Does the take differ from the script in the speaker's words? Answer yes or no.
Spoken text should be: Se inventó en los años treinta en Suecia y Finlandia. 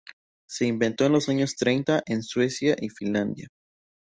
no